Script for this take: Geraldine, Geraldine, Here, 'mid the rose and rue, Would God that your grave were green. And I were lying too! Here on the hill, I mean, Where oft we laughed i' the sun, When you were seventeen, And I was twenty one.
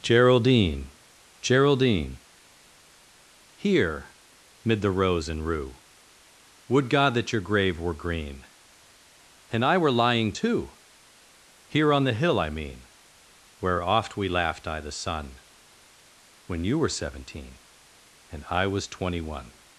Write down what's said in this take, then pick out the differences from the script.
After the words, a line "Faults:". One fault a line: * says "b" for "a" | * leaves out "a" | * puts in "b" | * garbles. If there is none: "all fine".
Geraldine, Geraldine, Here, 'mid the rose and rue, Would God that your grave were green. And I were lying too! Here on the hill, I mean, Where oft we laughed i' the sun, When you were seventeen, And I was twenty one.
Faults:
all fine